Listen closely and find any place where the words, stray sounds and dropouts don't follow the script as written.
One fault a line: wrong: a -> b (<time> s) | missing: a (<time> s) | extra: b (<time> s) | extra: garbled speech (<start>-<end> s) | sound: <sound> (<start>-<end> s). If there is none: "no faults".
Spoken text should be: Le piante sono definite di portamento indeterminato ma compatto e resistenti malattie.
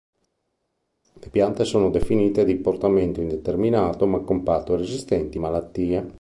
no faults